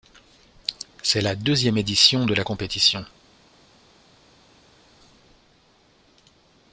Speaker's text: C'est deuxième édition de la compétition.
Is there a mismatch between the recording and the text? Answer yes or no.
yes